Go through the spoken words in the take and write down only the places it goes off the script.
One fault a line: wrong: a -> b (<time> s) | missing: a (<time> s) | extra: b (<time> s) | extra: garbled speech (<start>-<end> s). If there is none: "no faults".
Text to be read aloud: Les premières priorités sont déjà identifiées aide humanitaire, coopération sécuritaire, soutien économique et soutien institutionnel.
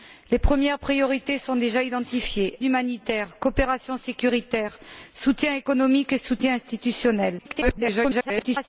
missing: aide (2.6 s)
extra: garbled speech (7.4-8.7 s)